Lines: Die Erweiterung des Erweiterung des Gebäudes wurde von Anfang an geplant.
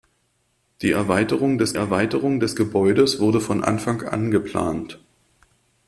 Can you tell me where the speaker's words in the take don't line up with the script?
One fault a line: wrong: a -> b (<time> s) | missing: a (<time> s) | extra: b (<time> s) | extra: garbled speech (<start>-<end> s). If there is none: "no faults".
no faults